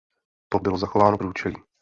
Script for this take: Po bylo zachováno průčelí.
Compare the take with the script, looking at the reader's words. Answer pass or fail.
pass